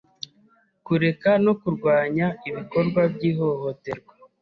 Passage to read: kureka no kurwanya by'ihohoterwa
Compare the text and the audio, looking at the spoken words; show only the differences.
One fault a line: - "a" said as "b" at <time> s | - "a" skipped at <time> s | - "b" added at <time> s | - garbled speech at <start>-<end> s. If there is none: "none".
- "ibikorwa" added at 2.5 s